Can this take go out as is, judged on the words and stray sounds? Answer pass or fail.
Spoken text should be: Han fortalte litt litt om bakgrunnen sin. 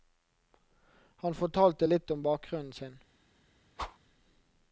fail